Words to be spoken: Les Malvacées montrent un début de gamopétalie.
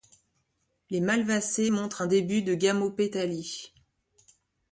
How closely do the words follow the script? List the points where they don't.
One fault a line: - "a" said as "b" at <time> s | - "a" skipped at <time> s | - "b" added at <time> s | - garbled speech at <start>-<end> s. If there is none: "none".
none